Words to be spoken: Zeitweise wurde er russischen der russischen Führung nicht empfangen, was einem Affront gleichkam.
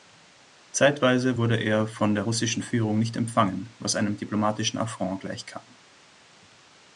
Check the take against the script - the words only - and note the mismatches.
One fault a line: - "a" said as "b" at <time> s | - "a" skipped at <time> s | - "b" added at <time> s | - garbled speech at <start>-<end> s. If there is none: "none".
- "russischen" said as "von" at 1.9 s
- "diplomatischen" added at 4.2 s